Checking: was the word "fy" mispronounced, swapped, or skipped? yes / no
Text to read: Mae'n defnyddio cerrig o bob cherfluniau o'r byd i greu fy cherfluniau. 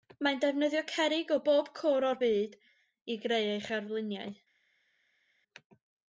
yes